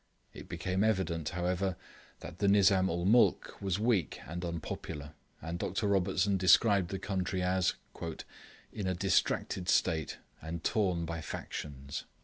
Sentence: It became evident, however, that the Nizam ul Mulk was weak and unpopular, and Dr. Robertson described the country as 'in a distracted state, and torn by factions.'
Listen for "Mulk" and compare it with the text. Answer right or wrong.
right